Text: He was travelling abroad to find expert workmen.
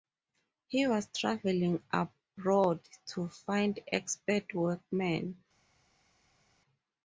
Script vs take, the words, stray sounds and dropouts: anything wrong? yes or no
no